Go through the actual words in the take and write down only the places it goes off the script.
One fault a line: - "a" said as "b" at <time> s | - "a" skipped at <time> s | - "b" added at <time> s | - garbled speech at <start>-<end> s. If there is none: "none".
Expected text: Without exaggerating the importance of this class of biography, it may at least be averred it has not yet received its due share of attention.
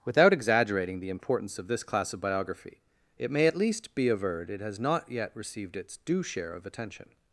none